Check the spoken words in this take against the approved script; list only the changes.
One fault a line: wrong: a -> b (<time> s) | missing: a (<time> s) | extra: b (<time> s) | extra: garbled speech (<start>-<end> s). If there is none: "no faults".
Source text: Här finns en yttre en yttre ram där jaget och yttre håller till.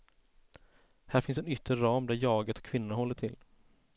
missing: en yttre (1.7 s)
wrong: yttre -> kvinnorna (2.6 s)